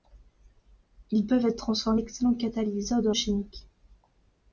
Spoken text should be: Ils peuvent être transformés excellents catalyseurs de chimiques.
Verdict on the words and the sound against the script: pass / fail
pass